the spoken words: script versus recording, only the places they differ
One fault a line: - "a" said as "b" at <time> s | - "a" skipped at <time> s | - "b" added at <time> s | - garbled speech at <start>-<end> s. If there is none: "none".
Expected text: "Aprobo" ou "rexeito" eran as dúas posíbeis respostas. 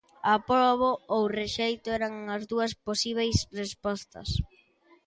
none